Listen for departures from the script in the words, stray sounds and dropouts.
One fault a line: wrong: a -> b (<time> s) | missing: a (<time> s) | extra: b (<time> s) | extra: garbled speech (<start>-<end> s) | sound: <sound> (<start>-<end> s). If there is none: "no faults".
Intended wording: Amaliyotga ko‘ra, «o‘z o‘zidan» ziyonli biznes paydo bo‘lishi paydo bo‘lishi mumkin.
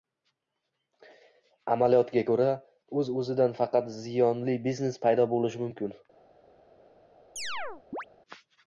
extra: faqat (3.6 s)
missing: paydo bo‘lishi (5.7 s)
sound: chirp (7.4-8.1 s)